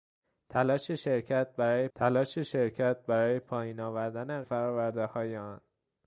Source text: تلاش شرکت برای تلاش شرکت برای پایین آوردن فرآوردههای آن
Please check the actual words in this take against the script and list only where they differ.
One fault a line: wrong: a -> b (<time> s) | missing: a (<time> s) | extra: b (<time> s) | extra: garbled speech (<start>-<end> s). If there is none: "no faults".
no faults